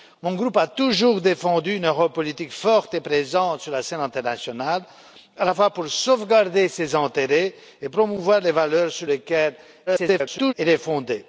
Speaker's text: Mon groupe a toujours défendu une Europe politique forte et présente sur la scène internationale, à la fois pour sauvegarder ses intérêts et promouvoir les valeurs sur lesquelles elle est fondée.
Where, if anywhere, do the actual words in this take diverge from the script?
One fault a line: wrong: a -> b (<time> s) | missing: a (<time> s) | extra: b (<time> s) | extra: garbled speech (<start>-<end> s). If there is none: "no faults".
extra: garbled speech (9.9-10.5 s)